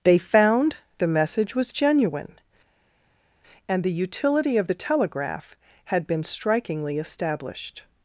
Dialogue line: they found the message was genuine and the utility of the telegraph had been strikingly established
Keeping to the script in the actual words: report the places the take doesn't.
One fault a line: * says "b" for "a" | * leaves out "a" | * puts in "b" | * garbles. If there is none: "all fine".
all fine